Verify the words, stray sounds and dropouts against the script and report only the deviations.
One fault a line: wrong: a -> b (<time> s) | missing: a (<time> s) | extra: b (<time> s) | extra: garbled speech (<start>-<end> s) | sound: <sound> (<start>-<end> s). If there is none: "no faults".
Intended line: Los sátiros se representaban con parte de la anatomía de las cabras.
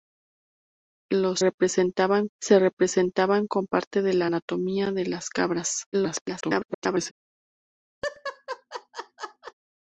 wrong: sátiros -> representaban (1.4 s)
extra: garbled speech (5.9-7.1 s)
sound: laugh (8.0-9.5 s)